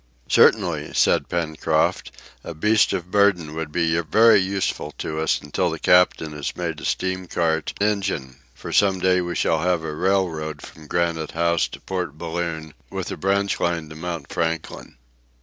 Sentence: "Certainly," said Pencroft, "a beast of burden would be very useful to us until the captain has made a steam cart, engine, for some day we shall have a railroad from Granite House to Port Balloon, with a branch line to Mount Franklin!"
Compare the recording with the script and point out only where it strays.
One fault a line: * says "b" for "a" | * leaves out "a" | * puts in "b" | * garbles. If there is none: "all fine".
all fine